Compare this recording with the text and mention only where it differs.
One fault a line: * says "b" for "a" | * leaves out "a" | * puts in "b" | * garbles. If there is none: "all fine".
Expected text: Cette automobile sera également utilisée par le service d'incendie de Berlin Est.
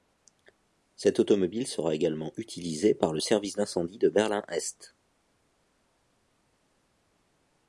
all fine